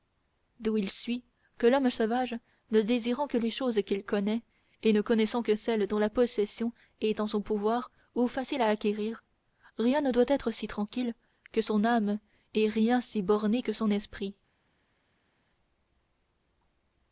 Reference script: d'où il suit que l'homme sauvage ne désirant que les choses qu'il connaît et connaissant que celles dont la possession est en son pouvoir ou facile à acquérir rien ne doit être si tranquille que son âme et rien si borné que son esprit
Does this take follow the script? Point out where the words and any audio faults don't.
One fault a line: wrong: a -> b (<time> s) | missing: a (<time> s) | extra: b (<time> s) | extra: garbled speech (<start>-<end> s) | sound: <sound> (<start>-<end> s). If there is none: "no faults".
extra: ne (4.9 s)